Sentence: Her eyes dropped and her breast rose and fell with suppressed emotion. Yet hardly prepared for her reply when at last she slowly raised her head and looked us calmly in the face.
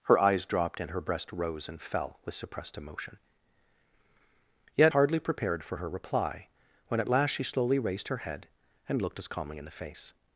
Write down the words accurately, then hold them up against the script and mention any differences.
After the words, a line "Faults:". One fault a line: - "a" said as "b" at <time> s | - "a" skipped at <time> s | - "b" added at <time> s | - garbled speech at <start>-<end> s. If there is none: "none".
Her eyes dropped and her breast rose and fell with suppressed emotion. Yet hardly prepared for her reply when at last she slowly raised her head and looked us calmly in the face.
Faults:
none